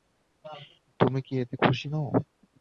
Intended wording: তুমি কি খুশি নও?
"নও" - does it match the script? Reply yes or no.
yes